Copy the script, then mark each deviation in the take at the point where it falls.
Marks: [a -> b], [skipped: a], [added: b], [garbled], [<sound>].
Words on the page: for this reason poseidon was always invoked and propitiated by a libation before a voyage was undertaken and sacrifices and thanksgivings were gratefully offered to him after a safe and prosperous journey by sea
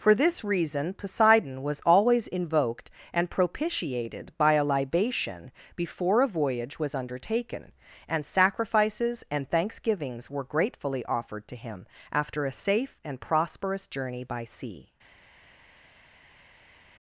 for this reason poseidon was always invoked and propitiated by a libation before a voyage was undertaken and sacrifices and thanksgivings were gratefully offered to him after a safe and prosperous journey by sea